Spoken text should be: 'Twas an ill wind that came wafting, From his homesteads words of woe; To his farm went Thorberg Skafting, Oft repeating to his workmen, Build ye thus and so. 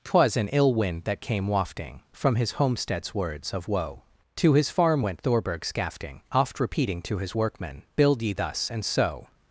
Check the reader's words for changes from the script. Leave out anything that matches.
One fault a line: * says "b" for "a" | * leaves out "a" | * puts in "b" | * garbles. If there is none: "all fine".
all fine